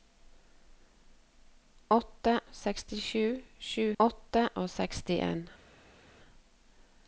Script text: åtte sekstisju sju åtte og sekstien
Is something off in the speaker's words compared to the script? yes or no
no